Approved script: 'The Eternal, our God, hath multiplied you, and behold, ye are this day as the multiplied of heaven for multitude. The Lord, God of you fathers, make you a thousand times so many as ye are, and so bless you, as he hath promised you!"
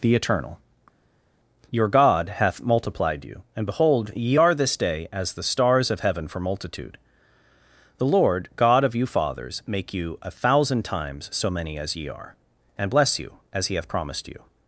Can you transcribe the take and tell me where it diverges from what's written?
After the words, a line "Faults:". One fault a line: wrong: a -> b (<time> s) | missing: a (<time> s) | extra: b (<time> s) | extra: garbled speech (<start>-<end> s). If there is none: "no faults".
'The Eternal, your God, hath multiplied you, and behold, ye are this day as the stars of heaven for multitude. The Lord, God of you fathers, make you a thousand times so many as ye are, and bless you, as he hath promised you!"
Faults:
wrong: our -> your (1.7 s)
wrong: multiplied -> stars (5.4 s)
missing: so (12.9 s)